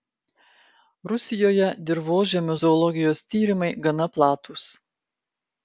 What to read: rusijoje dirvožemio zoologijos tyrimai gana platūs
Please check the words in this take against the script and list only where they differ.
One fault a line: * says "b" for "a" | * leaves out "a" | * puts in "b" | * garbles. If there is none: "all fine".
all fine